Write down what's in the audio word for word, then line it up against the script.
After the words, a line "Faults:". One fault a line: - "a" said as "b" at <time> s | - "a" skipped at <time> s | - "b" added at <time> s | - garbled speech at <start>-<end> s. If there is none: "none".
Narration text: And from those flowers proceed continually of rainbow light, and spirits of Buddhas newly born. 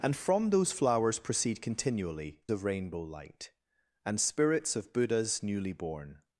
And from those flowers proceed continually of rainbow light, and spirits of Buddhas newly born.
Faults:
none